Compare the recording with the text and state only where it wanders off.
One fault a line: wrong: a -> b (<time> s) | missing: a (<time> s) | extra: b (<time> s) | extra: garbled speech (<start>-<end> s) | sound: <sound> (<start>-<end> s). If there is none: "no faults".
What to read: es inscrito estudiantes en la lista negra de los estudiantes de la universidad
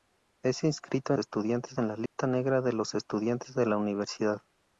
sound: dropout (2.1-2.2 s)